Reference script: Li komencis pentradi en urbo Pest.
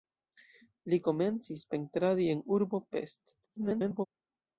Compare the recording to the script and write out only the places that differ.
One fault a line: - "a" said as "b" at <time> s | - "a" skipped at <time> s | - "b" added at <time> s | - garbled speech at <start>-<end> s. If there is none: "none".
- garbled speech at 3.4-4.1 s